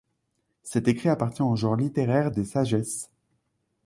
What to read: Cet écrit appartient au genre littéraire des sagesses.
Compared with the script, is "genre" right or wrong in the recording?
right